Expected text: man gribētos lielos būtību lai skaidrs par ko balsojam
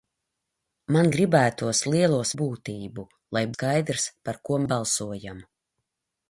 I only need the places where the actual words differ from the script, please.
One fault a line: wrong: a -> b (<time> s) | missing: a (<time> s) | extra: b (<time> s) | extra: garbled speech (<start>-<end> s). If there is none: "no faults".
no faults